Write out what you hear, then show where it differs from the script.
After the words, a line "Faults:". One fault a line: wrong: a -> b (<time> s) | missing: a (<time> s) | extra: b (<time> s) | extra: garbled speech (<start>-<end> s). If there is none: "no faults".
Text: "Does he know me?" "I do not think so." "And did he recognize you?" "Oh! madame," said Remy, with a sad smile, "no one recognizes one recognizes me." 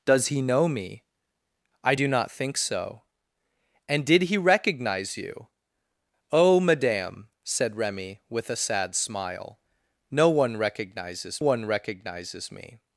"Does he know me?" "I do not think so." "And did he recognize you?" "Oh! madame," said Remy, with a sad smile, "no one recognizes one recognizes me."
Faults:
no faults